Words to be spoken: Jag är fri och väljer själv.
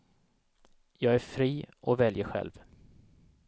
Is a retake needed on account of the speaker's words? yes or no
no